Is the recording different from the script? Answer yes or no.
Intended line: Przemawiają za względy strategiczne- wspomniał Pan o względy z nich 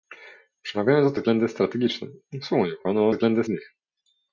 no